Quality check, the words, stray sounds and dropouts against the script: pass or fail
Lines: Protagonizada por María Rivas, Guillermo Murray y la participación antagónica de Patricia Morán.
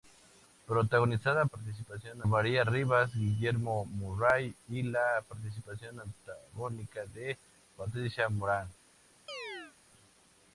fail